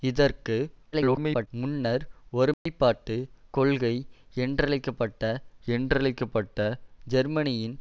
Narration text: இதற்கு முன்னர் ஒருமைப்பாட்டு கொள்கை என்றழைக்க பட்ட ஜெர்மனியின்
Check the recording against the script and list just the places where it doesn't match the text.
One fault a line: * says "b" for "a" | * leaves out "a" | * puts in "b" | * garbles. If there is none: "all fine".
* garbles
* puts in "என்றழைக்க பட்ட"